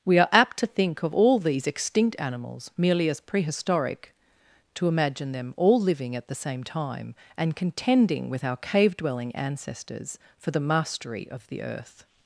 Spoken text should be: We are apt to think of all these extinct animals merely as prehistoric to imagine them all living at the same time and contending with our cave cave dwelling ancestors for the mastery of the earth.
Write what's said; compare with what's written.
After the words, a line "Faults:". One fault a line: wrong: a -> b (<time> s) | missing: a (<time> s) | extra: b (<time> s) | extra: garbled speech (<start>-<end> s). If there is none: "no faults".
We are apt to think of all these extinct animals merely as prehistoric to imagine them all living at the same time and contending with our cave dwelling ancestors for the mastery of the earth.
Faults:
missing: cave (9.0 s)